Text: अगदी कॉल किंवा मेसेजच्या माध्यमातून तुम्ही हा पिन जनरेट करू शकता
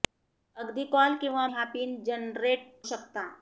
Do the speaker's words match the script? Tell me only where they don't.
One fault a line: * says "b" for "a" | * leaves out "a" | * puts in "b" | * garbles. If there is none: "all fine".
* leaves out "मेसेजच्या माध्यमातून तुम्ही"
* leaves out "करू"